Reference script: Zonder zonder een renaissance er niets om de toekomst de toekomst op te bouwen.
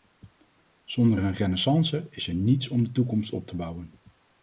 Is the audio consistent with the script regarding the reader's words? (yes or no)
no